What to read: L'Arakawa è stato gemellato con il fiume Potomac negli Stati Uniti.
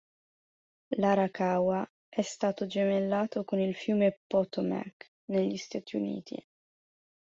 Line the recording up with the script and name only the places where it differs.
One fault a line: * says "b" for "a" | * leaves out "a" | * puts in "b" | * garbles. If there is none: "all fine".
all fine